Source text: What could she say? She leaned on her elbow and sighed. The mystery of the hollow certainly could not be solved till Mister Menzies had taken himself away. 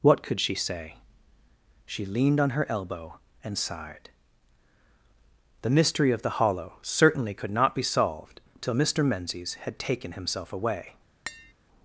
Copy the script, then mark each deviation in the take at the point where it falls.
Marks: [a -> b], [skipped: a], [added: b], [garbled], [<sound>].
What could she say? She leaned on her elbow and sighed. The mystery of the hollow certainly could not be solved till Mister Menzies had taken himself away. [tap]